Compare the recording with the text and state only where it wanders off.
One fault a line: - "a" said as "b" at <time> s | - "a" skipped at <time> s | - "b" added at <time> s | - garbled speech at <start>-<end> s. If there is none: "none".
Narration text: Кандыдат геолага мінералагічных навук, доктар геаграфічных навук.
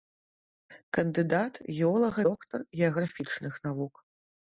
- "мінералагічных навук" skipped at 2.2 s